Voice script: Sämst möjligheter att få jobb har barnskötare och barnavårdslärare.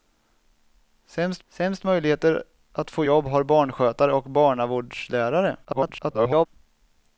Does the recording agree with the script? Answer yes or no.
no